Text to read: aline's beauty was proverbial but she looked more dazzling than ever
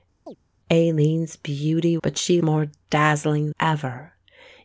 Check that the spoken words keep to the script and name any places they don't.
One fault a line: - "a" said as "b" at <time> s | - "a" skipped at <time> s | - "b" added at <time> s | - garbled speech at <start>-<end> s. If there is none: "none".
- "was proverbial" skipped at 2.0 s
- "looked" skipped at 2.4 s
- "than" skipped at 3.5 s